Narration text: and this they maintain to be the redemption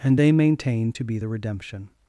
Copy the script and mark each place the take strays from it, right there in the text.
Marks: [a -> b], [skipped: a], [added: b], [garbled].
and [skipped: this] they maintain to be the redemption